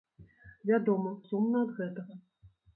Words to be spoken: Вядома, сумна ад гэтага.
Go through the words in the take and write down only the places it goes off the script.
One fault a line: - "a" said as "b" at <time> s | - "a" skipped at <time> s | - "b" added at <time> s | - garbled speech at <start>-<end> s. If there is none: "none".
none